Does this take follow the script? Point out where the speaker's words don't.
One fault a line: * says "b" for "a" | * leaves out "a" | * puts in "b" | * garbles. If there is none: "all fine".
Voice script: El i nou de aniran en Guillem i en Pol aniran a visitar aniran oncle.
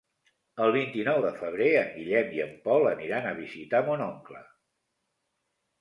* puts in "vint"
* says "febrer" for "aniran"
* says "mon" for "aniran"